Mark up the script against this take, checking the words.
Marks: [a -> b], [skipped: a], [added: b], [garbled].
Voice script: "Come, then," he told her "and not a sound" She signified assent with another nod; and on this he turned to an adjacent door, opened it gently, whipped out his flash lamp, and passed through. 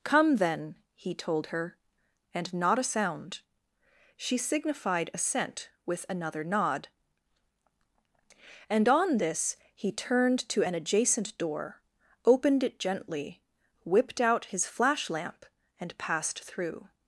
"Come, then," he told her "and not a sound" She signified assent with another nod; and on this he turned to an adjacent door, opened it gently, whipped out his flash lamp, and passed through.